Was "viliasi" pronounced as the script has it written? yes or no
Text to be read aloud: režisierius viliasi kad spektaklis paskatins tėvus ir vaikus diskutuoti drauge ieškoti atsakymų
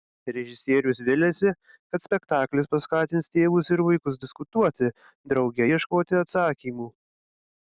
yes